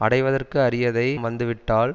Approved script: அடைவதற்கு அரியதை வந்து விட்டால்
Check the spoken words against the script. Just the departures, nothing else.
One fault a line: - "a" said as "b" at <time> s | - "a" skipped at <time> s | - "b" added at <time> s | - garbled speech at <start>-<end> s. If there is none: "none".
none